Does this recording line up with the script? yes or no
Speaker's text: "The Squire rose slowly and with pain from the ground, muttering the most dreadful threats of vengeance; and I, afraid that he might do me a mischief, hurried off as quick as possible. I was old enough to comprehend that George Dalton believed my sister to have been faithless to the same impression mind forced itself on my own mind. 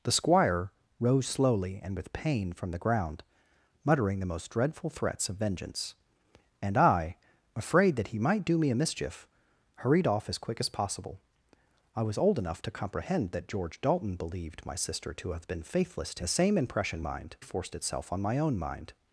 yes